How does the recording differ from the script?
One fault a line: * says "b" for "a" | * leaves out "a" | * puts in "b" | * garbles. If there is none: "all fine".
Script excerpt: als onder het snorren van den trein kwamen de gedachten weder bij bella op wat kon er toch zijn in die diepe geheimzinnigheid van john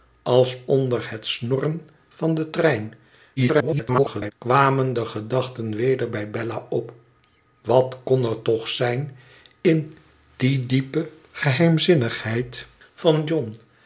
* garbles